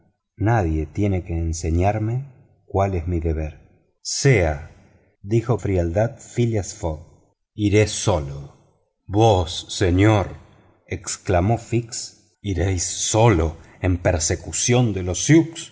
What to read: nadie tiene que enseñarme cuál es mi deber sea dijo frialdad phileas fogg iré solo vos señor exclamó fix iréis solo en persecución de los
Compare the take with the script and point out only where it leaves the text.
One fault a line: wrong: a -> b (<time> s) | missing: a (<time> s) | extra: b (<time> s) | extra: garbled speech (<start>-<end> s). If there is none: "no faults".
no faults